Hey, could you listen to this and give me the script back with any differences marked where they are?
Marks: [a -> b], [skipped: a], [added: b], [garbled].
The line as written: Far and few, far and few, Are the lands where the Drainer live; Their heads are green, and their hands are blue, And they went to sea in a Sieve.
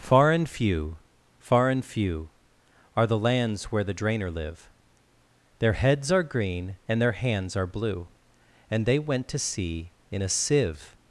Far and few, far and few, Are the lands where the Drainer live; Their heads are green, and their hands are blue, And they went to sea in a Sieve.